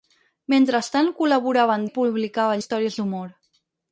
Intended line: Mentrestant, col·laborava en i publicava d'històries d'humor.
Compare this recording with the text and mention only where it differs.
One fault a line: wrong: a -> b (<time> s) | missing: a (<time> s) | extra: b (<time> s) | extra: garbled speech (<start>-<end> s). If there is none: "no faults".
no faults